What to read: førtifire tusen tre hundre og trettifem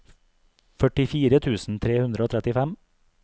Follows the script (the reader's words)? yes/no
yes